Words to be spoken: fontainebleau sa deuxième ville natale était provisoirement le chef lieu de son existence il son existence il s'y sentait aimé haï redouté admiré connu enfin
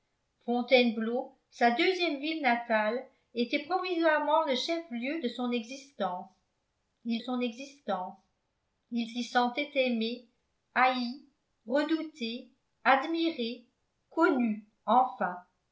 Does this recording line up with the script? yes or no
yes